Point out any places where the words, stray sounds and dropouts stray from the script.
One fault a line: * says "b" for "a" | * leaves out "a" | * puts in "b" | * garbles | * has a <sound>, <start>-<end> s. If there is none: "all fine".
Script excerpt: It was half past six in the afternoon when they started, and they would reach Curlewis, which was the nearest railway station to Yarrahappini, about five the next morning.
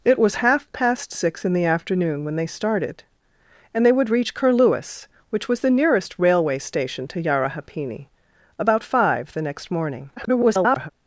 * garbles